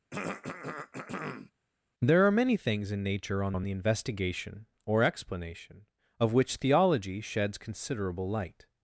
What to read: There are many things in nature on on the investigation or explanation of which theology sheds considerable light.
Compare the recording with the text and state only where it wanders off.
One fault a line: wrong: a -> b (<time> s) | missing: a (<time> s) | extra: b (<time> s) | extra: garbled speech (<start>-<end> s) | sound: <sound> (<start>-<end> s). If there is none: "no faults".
sound: throat clearing (0.1-1.5 s)